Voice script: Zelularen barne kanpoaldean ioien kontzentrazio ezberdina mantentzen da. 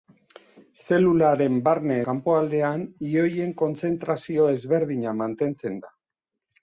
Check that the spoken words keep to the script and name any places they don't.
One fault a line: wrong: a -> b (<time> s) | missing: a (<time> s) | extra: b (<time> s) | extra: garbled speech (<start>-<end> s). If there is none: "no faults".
no faults